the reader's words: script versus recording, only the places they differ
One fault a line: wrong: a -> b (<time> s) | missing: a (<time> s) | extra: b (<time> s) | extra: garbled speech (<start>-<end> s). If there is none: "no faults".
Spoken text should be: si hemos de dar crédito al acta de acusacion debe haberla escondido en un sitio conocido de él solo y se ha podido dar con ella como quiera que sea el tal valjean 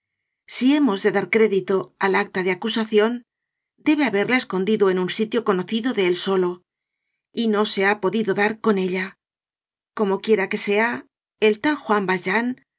extra: no (7.5 s)
extra: juan (11.8 s)